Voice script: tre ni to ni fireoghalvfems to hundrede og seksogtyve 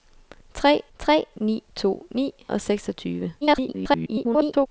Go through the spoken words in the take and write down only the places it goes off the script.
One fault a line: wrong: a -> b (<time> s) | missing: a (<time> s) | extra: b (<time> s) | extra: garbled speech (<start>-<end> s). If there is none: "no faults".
extra: tre (1.0 s)
missing: fireoghalvfems to hundrede (2.3 s)
extra: garbled speech (3.4-4.7 s)